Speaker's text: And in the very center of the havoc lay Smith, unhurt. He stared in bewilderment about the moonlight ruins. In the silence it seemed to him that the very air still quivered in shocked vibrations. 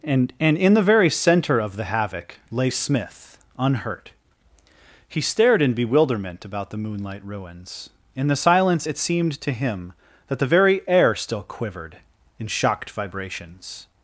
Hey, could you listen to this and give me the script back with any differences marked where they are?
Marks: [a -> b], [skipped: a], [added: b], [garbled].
And [added: and] in the very center of the havoc lay Smith, unhurt. He stared in bewilderment about the moonlight ruins. In the silence it seemed to him that the very air still quivered in shocked vibrations.